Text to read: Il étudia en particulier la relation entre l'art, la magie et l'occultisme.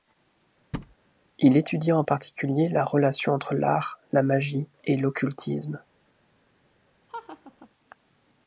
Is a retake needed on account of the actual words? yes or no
no